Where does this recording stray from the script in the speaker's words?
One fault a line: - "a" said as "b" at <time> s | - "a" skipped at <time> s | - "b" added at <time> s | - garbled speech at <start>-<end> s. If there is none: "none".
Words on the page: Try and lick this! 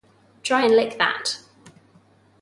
- "this" said as "that" at 1.0 s